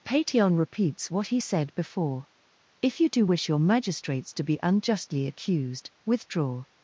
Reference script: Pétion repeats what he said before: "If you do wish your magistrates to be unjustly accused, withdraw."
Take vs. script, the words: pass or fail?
pass